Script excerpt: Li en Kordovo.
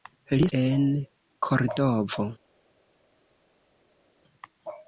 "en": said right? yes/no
yes